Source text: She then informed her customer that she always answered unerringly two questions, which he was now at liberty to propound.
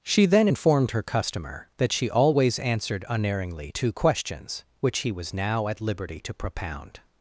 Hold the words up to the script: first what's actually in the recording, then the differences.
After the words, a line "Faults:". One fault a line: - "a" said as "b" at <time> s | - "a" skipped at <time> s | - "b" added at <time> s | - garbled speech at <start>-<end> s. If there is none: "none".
She then informed her customer that she always answered unerringly two questions, which he was now at liberty to propound.
Faults:
none